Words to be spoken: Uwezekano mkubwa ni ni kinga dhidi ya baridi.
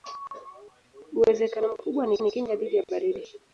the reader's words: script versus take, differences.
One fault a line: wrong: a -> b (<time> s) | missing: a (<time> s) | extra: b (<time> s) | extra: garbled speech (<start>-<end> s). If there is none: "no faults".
no faults